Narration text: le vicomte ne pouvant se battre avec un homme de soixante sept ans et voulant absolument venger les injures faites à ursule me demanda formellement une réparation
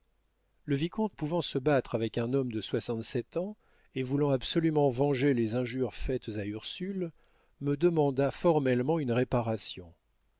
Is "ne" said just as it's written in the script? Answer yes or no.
no